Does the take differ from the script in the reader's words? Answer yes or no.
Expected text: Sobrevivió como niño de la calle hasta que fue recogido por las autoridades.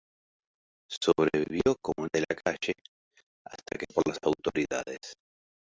yes